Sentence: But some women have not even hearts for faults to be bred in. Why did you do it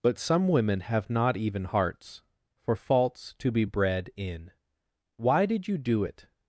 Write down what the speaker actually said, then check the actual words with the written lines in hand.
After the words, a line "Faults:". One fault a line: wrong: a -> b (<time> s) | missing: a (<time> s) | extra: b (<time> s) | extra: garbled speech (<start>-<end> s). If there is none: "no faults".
But some women have not even hearts for faults to be bred in. Why did you do it
Faults:
no faults